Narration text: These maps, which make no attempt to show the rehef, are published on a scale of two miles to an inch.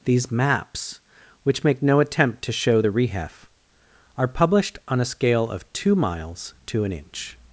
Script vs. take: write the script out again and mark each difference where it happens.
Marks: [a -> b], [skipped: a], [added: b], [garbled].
These maps, which make no attempt to show the rehef, are published on a scale of two miles to an inch.